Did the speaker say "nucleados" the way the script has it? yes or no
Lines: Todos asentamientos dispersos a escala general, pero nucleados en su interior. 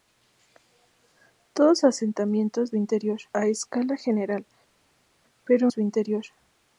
no